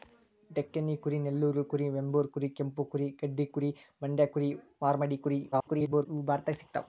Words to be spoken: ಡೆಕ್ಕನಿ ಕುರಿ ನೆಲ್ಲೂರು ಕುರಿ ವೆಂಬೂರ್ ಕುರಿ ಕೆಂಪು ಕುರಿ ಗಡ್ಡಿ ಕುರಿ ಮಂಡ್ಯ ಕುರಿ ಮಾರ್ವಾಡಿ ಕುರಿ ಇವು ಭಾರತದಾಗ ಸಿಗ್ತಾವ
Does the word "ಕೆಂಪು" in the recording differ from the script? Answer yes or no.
no